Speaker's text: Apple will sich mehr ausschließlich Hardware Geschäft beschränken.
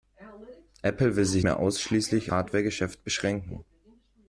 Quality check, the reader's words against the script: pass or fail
pass